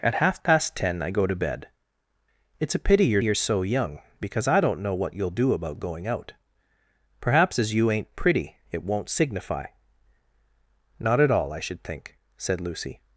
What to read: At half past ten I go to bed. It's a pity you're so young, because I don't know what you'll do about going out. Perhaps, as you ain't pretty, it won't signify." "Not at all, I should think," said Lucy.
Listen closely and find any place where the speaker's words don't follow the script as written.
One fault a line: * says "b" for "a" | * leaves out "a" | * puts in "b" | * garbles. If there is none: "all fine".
* puts in "you're"